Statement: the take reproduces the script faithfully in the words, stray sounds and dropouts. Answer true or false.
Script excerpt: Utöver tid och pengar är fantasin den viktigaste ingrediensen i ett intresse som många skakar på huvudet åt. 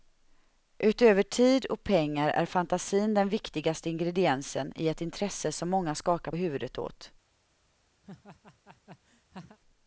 false